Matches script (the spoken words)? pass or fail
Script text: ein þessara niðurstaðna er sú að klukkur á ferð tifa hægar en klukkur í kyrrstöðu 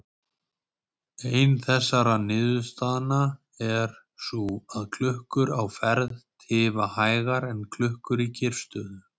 pass